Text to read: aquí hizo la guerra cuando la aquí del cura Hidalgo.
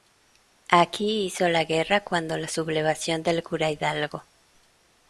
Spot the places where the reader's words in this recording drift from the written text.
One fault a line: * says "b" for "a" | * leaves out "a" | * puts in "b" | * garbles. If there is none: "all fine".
* says "sublevación" for "aquí"